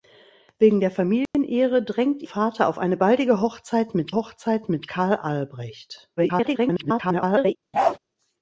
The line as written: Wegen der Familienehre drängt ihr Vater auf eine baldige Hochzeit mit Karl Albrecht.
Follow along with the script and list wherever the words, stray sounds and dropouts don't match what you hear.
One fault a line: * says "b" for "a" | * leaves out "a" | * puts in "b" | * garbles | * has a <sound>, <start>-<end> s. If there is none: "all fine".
* has a dropout, 1.3-1.3 s
* leaves out "ihr"
* puts in "Hochzeit mit"
* garbles
* has a bark, 7.7-8.0 s